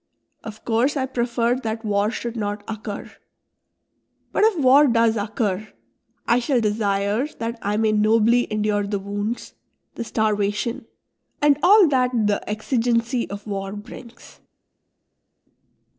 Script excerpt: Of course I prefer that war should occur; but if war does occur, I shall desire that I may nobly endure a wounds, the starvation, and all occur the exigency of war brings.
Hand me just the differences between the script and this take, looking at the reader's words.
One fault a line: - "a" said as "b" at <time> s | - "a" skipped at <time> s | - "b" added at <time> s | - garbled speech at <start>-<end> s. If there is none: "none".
- "not" added at 2.4 s
- "a" said as "the" at 8.9 s
- "occur" said as "that" at 11.9 s